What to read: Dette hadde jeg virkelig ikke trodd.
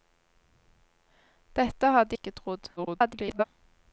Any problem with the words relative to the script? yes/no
yes